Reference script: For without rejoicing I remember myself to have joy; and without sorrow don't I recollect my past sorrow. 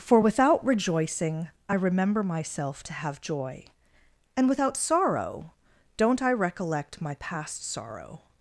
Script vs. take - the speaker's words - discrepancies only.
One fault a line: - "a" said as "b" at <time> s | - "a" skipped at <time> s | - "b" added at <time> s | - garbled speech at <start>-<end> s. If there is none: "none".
none